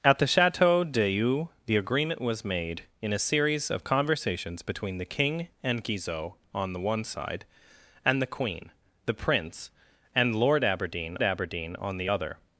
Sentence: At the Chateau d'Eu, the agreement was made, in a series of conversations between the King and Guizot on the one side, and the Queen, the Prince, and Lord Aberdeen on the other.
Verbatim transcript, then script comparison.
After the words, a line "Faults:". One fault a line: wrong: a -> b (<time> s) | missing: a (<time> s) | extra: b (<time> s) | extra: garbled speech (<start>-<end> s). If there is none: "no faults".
At the Chateau d'Eu, the agreement was made, in a series of conversations between the King and Guizot on the one side, and the Queen, the Prince, and Lord Aberdeen Aberdeen on the other.
Faults:
extra: Aberdeen (11.2 s)